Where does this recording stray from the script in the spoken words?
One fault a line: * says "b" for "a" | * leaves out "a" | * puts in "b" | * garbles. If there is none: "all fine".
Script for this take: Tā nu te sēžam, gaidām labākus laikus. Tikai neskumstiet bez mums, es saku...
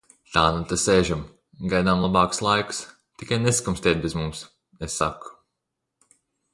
all fine